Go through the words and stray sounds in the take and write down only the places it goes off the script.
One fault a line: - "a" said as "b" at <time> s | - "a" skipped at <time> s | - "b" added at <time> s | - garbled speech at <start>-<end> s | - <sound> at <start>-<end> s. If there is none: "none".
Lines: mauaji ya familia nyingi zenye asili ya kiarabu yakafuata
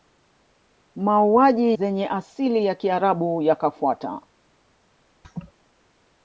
- "ya familia nyingi" skipped at 1.8 s
- laugh at 5.2-5.5 s